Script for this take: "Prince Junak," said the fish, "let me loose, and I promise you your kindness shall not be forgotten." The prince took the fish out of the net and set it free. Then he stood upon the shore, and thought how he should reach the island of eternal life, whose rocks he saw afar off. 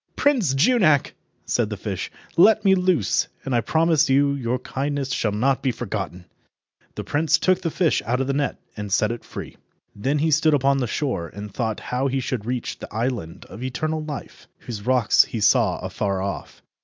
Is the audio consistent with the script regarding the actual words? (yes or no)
yes